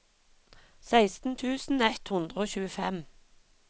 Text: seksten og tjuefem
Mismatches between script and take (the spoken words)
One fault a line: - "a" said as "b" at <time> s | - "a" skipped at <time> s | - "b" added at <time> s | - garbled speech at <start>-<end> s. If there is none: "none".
- "tusen ett hundre" added at 1.4 s